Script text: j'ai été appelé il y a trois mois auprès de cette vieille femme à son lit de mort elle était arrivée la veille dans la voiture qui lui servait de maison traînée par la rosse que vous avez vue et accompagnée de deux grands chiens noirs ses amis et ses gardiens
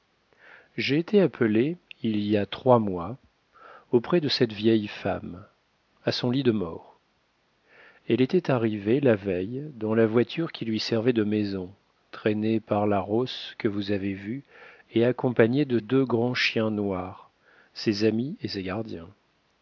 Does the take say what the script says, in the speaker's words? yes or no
yes